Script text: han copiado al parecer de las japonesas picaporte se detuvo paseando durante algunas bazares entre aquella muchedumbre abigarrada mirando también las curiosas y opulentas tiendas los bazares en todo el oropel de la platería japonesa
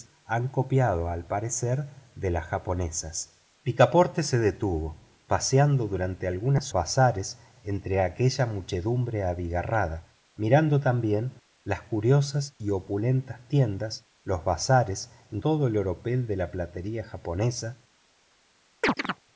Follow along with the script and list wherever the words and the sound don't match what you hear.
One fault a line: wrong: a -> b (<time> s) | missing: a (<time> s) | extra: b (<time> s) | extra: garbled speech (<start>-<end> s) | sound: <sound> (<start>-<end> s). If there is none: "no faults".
sound: chirp (18.8-19.2 s)